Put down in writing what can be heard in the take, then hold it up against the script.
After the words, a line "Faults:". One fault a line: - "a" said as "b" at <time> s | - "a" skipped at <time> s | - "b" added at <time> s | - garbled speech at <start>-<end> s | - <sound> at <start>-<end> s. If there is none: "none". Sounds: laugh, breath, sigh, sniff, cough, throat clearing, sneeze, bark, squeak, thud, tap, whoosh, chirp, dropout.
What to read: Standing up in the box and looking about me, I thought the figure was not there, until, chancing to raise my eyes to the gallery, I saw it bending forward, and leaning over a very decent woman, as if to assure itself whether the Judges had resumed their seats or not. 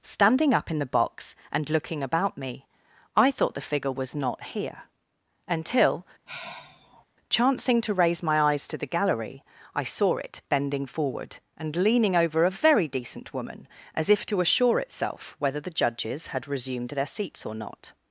Standing up in the box and looking about me, I thought the figure was not here, until, chancing to raise my eyes to the gallery, I saw it bending forward, and leaning over a very decent woman, as if to assure itself whether the Judges had resumed their seats or not.
Faults:
- "there" said as "here" at 4.5 s
- sigh at 6.3-7.0 s